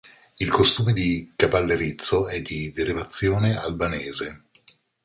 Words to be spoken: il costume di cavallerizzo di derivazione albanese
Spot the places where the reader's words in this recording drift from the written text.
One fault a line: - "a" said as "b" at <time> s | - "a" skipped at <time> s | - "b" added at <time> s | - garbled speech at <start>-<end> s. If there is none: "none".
- "è" added at 2.3 s